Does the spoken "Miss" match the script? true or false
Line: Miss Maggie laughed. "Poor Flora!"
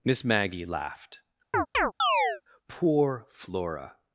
true